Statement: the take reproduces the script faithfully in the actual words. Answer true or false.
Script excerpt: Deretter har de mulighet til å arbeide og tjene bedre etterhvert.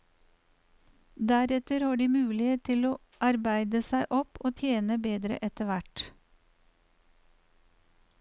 false